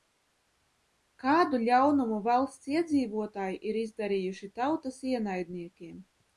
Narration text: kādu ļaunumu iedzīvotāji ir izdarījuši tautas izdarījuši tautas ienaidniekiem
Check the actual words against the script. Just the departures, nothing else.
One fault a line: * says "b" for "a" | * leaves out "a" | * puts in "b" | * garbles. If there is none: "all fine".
* puts in "valsts"
* leaves out "izdarījuši tautas"